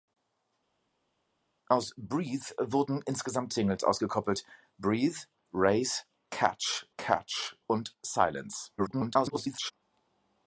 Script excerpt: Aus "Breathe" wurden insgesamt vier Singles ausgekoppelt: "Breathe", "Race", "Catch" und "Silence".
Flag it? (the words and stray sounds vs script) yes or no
yes